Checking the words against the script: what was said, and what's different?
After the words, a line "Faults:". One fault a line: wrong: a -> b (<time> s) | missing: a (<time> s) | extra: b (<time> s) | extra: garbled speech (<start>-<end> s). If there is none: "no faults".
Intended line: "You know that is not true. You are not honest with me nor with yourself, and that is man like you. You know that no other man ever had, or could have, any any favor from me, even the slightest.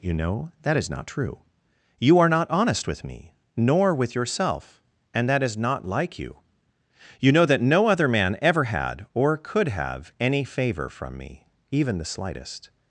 "You know that is not true. You are not honest with me nor with yourself, and that is not like you. You know that no other man ever had, or could have, any favor from me, even the slightest.
Faults:
wrong: man -> not (5.5 s)
missing: any (10.4 s)